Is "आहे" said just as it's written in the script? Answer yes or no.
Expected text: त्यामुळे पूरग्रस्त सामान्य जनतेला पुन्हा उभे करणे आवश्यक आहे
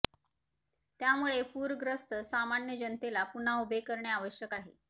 yes